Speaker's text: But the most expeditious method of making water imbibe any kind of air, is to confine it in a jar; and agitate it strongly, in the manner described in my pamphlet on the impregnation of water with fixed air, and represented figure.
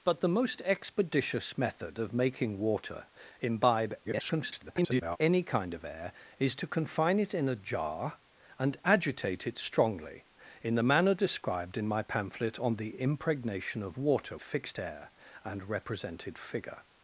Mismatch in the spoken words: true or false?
true